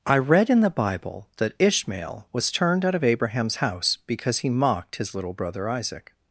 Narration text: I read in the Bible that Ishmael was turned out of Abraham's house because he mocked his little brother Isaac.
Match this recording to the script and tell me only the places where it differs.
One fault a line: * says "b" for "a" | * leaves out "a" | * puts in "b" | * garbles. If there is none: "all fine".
all fine